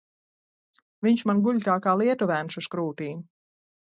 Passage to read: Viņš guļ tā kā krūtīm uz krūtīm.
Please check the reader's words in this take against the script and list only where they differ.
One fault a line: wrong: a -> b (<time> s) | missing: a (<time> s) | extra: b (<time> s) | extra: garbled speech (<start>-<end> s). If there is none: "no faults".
extra: man (1.3 s)
wrong: krūtīm -> lietuvēns (2.0 s)